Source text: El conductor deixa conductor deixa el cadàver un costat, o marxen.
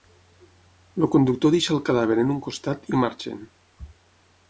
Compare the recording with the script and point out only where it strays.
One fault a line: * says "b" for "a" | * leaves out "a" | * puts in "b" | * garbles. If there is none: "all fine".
* leaves out "conductor deixa"
* puts in "en"
* says "i" for "o"